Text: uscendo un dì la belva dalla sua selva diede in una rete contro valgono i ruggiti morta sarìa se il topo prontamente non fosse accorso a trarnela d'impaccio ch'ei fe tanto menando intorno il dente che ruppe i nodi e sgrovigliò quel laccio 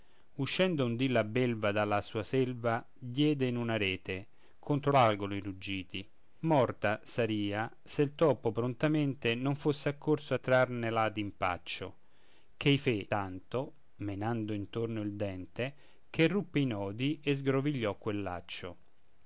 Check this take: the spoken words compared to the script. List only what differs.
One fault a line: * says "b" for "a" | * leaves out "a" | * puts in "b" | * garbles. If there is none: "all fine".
all fine